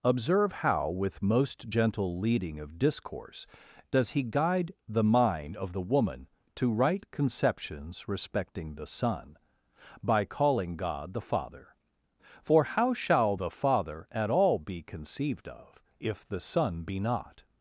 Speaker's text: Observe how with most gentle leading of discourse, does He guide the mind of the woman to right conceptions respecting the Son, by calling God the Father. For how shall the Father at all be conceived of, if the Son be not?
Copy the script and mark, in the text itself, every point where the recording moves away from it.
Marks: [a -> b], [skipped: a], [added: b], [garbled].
Observe how with most gentle leading of discourse, does He guide the mind of the woman to right conceptions respecting the Son, by calling God the Father. For how shall the Father at all be conceived of, if the Son be not?